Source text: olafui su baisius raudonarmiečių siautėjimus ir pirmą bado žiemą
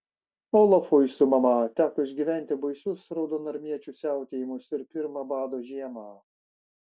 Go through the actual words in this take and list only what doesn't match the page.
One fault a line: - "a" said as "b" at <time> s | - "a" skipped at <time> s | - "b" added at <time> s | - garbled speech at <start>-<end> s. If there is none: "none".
- "mama teko išgyventi" added at 1.3 s